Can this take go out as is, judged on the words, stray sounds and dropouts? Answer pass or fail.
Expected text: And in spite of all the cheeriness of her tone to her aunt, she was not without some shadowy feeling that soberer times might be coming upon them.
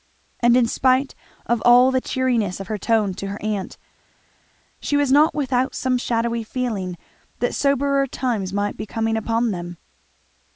pass